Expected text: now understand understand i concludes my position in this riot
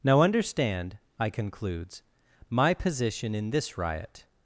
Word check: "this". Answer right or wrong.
right